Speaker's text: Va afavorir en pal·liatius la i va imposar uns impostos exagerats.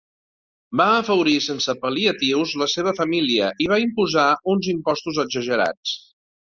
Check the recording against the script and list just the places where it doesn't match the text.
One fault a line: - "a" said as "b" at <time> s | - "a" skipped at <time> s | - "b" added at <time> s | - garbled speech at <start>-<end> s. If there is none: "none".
- "en" said as "sense" at 1.5 s
- "seva família" added at 2.8 s